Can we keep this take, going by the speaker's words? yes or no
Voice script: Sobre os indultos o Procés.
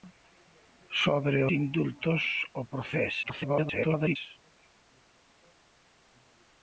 no